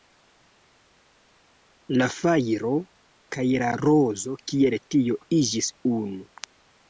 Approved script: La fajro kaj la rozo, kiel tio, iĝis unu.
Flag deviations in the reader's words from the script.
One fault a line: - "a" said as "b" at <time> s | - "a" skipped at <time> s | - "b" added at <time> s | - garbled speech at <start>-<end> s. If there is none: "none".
none